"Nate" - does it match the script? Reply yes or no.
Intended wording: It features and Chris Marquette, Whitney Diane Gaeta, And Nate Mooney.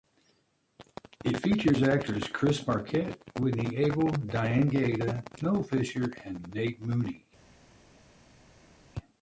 yes